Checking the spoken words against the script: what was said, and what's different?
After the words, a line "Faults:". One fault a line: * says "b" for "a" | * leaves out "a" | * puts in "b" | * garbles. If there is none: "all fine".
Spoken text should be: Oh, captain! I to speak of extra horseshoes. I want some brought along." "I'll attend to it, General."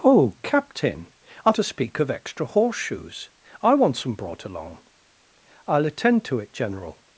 Oh, captain! I to speak of extra horseshoes. I want some brought along." "I'll attend to it, General."
Faults:
all fine